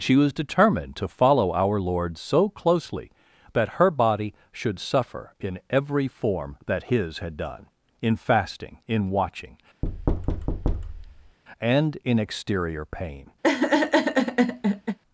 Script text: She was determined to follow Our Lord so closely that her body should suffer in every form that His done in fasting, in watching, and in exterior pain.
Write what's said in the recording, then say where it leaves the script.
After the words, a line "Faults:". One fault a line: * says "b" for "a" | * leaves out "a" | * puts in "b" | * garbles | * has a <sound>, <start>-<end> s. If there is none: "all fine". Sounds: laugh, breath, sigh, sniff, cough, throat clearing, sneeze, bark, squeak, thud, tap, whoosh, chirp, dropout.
She was determined to follow Our Lord so closely that her body should suffer in every form that His had done in fasting, in watching, and in exterior pain.
Faults:
* puts in "had"
* has a thud, 9.8-11.4 s
* has a laugh, 13.4-15.0 s